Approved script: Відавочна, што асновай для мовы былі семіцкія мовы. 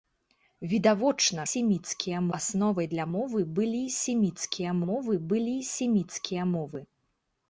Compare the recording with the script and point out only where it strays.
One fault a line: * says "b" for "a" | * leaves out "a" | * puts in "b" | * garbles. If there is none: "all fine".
* says "семіцкія" for "што"
* puts in "былі семіцкія мовы"